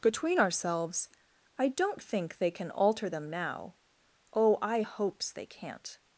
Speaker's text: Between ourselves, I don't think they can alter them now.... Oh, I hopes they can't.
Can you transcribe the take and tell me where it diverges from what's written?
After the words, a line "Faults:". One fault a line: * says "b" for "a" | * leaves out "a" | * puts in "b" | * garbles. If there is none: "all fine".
Between ourselves, I don't think they can alter them now.... Oh, I hopes they can't.
Faults:
all fine